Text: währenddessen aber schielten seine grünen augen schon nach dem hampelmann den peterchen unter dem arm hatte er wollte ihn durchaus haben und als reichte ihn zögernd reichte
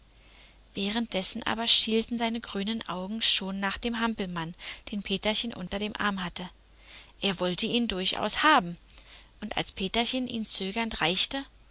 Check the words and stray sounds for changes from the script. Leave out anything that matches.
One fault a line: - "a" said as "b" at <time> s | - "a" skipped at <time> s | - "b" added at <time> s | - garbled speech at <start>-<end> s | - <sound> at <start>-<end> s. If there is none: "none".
- dropout at 5.7-5.7 s
- "reichte" said as "peterchen" at 9.7 s